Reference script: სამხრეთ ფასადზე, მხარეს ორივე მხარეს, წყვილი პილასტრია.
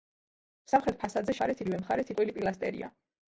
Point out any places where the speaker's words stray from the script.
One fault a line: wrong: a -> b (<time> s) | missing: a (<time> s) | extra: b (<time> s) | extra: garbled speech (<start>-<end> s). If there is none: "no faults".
no faults